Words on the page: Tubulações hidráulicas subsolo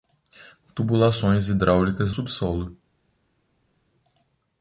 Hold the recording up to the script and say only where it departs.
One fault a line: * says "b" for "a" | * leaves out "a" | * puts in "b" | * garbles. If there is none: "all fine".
all fine